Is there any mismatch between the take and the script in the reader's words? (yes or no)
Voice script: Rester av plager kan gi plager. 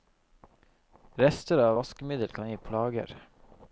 yes